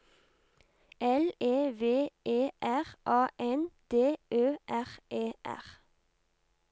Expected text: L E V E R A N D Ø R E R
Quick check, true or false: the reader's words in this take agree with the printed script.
true